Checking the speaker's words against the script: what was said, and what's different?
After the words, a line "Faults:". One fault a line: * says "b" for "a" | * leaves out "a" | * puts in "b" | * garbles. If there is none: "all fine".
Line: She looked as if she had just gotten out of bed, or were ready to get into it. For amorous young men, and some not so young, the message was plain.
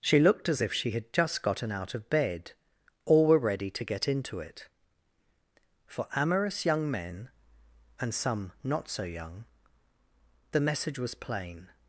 She looked as if she had just gotten out of bed, or were ready to get into it. For amorous young men, and some not so young, the message was plain.
Faults:
all fine